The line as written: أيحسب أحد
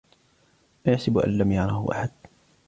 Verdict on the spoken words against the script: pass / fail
fail